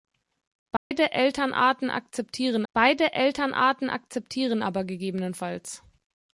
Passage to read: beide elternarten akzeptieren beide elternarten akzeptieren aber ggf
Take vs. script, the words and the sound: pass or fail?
fail